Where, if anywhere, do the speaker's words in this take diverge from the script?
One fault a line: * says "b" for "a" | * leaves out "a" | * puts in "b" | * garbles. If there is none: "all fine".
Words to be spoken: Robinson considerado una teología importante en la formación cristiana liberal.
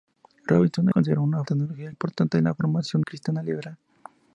all fine